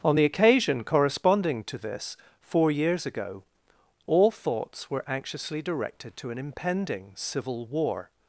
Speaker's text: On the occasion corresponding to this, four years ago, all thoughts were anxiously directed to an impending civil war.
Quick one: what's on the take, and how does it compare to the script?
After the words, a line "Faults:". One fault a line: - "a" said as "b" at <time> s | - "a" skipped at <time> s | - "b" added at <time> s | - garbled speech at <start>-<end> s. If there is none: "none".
On the occasion corresponding to this, four years ago, all thoughts were anxiously directed to an impending civil war.
Faults:
none